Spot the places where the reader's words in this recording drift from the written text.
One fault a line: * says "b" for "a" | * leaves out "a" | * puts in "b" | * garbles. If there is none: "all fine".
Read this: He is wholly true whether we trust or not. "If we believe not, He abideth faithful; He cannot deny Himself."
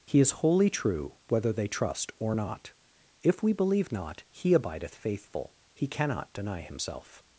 * says "they" for "we"